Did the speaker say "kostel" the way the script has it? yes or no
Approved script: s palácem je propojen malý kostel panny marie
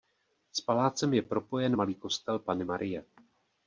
yes